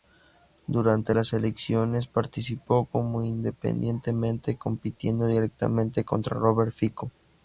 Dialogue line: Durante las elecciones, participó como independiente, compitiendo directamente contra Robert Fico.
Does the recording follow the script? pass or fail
pass